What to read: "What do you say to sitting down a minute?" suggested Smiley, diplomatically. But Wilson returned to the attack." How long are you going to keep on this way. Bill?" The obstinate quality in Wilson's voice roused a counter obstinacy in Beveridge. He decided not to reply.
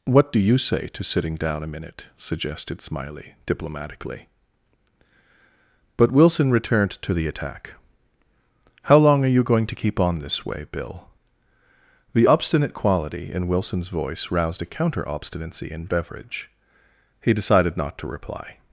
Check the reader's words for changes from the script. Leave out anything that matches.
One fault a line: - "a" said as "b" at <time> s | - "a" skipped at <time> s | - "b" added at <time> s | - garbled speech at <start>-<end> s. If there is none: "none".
none